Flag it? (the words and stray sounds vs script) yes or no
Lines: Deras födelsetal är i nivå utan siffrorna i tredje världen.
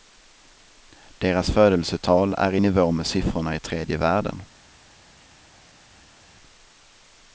yes